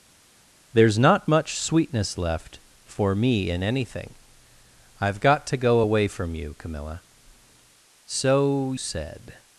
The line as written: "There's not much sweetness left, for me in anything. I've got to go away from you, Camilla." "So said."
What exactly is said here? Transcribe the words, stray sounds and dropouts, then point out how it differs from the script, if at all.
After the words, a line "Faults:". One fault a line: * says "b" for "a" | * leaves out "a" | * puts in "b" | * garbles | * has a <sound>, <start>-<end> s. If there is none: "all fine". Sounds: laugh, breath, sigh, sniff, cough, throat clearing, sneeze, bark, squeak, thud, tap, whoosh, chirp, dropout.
"There's not much sweetness left, for me in anything. I've got to go away from you, Camilla." "So said."
Faults:
all fine